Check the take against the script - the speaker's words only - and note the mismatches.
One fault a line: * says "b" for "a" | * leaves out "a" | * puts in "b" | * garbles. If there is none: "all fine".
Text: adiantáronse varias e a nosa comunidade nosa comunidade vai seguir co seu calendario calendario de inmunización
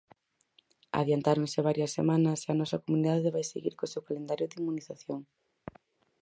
* puts in "semanas"
* leaves out "nosa comunidade"
* leaves out "calendario"